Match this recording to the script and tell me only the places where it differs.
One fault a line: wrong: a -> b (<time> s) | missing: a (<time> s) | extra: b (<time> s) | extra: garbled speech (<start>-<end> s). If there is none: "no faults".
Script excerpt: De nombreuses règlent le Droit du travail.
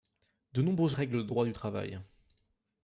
no faults